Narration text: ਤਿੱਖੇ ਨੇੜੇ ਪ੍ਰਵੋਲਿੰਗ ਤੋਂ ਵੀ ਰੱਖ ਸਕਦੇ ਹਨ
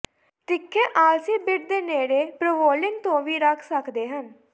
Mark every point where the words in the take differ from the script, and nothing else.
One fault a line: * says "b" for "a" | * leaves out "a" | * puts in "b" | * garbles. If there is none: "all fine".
* puts in "ਆਲਸੀ ਬਿੱਟ ਦੇ"